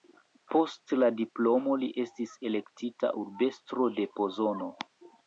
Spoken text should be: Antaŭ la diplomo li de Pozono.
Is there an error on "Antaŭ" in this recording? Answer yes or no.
yes